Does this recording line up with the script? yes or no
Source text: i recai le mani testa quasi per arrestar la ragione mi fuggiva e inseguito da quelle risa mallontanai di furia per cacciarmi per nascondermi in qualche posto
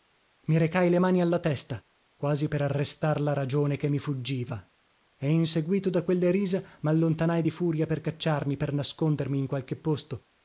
no